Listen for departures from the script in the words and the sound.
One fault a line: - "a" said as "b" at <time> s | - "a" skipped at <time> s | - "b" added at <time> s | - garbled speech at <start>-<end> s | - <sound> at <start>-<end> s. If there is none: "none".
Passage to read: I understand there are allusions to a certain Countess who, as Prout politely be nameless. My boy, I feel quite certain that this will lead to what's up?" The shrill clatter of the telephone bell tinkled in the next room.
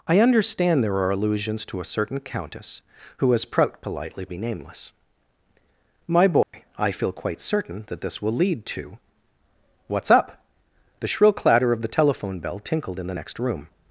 - dropout at 6.4-6.5 s